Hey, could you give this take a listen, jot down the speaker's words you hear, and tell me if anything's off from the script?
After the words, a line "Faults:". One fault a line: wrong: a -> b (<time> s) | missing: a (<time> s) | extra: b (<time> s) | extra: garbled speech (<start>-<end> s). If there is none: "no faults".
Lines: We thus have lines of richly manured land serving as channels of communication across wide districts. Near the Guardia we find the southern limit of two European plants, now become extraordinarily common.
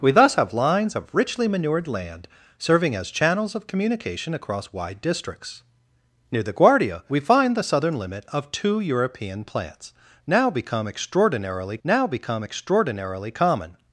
We thus have lines of richly manured land serving as channels of communication across wide districts. Near the Guardia we find the southern limit of two European plants, now become extraordinarily now become extraordinarily common.
Faults:
extra: now become extraordinarily (11.8 s)